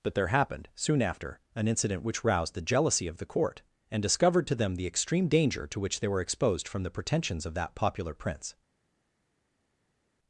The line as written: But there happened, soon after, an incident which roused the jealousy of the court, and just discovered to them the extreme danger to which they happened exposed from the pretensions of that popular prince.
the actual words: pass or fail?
fail